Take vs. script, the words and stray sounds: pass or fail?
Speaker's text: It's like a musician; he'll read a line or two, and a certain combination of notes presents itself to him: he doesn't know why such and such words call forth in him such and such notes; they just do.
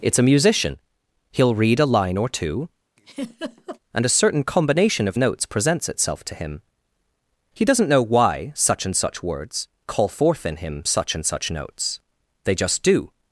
fail